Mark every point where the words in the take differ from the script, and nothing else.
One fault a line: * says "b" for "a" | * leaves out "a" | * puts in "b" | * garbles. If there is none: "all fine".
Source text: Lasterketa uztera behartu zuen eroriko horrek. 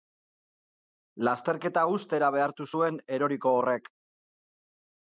all fine